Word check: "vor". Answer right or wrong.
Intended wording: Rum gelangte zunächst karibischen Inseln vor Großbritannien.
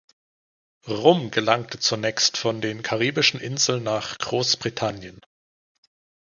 wrong